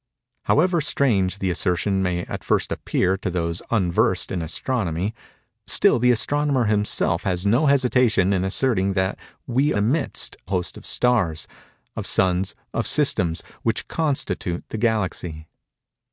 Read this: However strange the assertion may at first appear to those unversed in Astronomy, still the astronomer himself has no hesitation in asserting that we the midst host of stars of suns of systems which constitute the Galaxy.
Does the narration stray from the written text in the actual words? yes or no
no